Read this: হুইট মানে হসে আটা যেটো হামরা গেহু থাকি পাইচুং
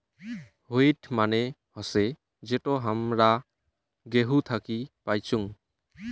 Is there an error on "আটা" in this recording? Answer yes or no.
yes